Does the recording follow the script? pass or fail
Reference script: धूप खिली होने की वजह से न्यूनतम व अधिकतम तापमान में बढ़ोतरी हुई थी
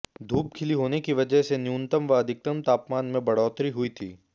pass